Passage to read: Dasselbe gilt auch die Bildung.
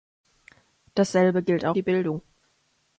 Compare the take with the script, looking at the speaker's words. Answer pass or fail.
pass